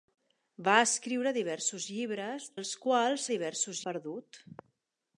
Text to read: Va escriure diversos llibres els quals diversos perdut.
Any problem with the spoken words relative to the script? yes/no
no